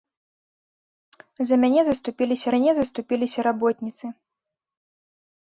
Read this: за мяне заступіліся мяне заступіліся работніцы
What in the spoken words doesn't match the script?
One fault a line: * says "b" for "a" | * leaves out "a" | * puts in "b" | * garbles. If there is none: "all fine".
all fine